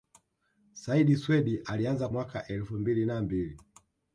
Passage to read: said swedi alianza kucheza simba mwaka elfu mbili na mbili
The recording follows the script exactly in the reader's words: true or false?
false